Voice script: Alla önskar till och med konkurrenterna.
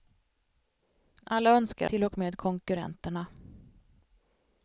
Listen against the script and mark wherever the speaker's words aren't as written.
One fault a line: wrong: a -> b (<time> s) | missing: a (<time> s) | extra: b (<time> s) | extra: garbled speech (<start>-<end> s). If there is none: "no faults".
no faults